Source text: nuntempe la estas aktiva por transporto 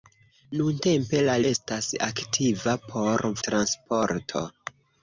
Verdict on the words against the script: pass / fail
pass